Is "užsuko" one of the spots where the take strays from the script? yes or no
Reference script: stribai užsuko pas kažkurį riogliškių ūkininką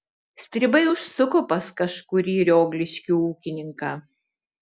no